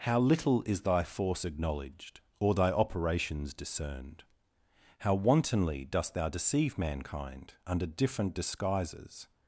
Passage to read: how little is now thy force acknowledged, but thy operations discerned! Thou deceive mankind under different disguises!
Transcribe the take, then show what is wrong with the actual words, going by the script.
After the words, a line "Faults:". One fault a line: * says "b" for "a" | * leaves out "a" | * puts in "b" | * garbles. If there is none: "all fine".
how little is thy force acknowledged, or thy operations discerned! How wantonly dost thou deceive mankind under different disguises!
Faults:
* leaves out "now"
* says "or" for "but"
* puts in "How wantonly dost"